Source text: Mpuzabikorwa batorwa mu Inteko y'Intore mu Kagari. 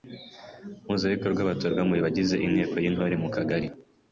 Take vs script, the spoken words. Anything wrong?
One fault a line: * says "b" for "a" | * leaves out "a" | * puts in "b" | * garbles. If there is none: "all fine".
* puts in "bagize"